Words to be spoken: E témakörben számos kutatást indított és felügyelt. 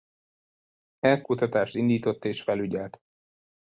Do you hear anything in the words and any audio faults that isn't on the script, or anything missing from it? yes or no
yes